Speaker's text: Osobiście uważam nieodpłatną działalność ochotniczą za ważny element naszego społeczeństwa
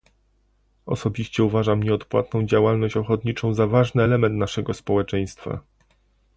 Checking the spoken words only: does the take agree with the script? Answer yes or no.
yes